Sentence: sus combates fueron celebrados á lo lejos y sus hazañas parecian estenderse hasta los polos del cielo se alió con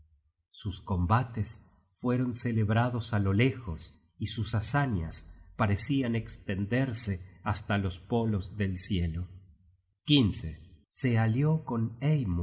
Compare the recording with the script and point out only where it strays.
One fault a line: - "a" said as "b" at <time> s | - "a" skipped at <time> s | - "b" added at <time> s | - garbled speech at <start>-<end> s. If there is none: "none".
none